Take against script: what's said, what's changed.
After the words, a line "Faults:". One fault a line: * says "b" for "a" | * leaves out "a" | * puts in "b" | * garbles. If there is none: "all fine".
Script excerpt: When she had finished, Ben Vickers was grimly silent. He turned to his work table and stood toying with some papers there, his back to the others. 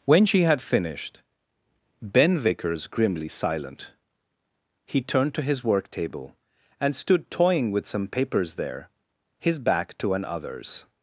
When she had finished, Ben Vickers grimly silent. He turned to his work table and stood toying with some papers there, his back to an others.
Faults:
* leaves out "was"
* says "an" for "the"